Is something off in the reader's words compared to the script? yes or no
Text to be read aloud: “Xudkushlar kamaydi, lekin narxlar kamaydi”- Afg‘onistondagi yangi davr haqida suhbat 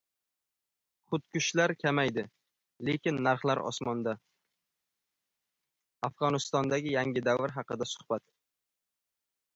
yes